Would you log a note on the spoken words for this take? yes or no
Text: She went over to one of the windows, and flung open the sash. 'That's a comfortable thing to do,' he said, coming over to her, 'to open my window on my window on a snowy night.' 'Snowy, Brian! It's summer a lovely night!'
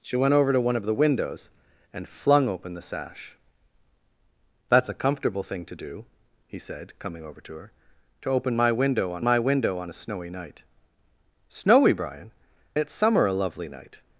no